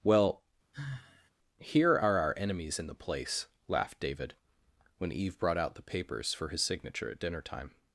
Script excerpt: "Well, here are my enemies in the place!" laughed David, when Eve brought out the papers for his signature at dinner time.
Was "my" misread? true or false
true